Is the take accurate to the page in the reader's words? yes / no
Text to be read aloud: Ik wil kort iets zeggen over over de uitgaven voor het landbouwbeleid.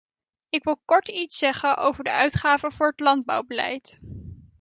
no